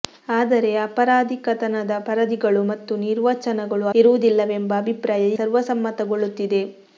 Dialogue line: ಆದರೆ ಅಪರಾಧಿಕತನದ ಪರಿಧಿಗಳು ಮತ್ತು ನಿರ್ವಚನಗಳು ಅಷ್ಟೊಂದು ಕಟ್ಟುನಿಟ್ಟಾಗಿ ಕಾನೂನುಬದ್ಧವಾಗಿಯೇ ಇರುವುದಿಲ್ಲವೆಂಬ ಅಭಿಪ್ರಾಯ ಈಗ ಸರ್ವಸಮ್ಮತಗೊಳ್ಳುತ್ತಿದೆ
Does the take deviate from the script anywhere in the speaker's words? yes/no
yes